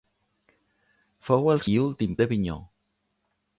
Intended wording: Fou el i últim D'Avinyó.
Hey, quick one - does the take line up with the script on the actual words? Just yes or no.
yes